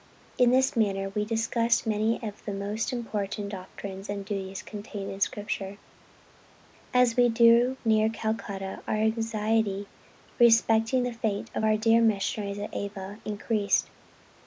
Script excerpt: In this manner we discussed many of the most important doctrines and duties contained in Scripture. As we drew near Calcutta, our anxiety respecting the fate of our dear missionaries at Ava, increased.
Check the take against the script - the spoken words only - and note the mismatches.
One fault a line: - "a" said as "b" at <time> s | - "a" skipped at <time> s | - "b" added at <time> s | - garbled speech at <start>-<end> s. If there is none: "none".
none